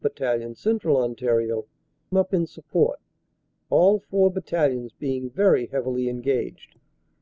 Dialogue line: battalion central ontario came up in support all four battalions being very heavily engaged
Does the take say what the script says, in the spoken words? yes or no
no